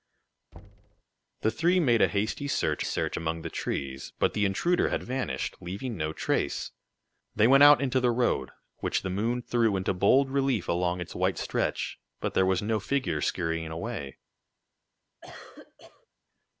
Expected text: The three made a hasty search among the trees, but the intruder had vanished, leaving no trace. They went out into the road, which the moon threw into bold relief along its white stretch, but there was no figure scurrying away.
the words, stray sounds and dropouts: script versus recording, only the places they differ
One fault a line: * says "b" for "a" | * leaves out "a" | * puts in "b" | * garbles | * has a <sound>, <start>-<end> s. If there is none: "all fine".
* has a thud, 0.5-1.0 s
* puts in "search"
* has a cough, 15.2-16.1 s